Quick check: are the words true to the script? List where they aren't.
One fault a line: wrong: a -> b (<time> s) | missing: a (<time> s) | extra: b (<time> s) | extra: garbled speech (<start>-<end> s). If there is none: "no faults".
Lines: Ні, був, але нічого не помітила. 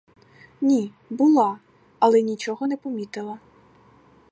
wrong: був -> була (1.1 s)